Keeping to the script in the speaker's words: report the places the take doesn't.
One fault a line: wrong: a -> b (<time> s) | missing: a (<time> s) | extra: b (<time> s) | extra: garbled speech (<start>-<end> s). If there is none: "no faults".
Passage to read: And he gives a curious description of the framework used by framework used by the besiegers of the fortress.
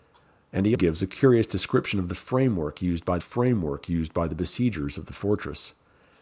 no faults